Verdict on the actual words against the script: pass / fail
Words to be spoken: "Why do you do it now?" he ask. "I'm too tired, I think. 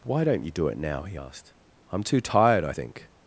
fail